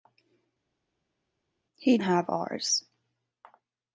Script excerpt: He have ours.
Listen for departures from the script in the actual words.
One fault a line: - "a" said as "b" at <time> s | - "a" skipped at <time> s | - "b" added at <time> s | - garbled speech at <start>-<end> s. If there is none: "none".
none